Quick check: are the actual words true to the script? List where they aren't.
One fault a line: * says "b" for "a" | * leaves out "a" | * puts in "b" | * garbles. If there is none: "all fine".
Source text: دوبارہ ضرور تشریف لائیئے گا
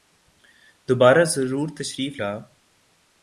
* leaves out "لائیئے"